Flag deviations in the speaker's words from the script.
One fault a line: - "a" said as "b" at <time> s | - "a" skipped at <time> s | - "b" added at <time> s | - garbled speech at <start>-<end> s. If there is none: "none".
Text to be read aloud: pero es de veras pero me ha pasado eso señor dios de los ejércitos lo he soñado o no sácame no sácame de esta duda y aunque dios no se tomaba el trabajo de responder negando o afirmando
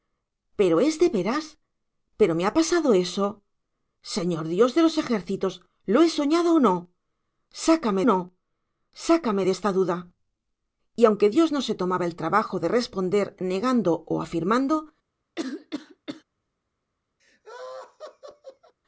none